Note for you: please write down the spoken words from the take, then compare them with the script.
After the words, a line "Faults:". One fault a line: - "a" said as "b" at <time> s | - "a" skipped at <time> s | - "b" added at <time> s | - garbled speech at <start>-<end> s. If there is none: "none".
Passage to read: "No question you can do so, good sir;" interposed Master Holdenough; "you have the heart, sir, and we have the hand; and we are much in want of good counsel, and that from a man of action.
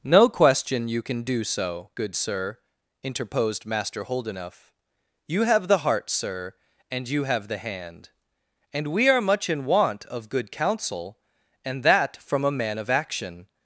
"No question you can do so, good sir;" interposed Master Holdenough; "you have the heart, sir, and you have the hand; and we are much in want of good counsel, and that from a man of action.
Faults:
- "we" said as "you" at 7.1 s